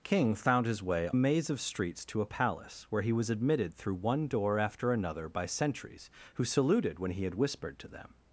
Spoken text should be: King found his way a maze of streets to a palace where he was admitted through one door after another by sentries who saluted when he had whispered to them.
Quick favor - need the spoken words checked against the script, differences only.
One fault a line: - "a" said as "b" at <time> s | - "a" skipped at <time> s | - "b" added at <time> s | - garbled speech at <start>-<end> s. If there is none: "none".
none